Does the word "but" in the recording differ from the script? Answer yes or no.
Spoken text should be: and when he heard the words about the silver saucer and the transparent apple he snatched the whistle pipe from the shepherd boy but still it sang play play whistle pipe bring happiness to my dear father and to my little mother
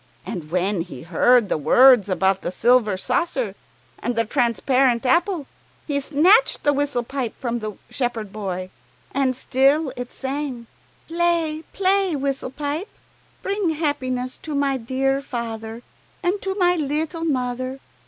yes